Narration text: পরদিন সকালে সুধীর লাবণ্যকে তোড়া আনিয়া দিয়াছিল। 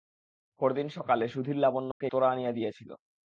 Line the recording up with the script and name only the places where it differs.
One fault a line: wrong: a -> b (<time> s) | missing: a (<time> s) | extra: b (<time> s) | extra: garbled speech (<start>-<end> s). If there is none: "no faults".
no faults